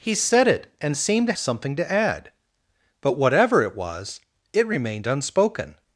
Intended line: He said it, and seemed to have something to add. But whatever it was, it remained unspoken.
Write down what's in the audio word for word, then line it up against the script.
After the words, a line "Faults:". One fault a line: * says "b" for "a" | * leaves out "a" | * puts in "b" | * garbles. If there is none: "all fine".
He said it, and seemed to something to add. But whatever it was, it remained unspoken.
Faults:
* leaves out "have"